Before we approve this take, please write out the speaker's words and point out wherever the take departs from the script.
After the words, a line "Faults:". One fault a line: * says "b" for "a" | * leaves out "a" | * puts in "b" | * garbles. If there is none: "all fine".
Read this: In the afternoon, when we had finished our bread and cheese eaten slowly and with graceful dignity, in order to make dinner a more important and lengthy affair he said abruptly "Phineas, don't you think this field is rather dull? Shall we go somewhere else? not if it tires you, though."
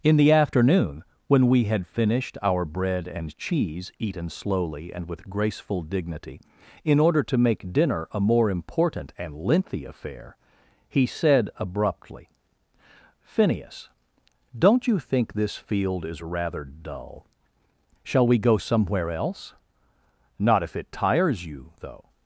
In the afternoon, when we had finished our bread and cheese eaten slowly and with graceful dignity, in order to make dinner a more important and lengthy affair he said abruptly "Phineas, don't you think this field is rather dull? Shall we go somewhere else? not if it tires you, though."
Faults:
all fine